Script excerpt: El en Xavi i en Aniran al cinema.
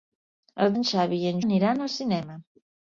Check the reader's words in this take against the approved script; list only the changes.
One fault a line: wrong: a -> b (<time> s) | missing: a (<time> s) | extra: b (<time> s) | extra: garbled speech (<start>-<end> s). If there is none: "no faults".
no faults